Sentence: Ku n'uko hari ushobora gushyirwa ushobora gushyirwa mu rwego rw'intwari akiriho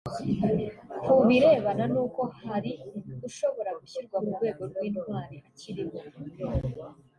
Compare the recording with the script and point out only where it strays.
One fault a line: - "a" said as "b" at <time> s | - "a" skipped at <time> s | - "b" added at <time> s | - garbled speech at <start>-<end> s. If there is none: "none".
- "birebana" added at 1.3 s
- "ushobora gushyirwa" skipped at 4.2 s